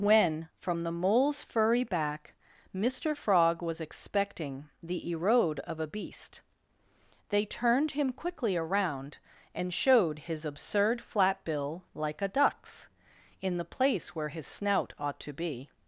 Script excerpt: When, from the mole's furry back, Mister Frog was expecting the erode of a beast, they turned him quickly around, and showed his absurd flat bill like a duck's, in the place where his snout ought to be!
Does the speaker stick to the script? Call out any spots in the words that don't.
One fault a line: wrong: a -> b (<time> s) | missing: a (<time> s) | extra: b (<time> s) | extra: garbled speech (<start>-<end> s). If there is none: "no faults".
no faults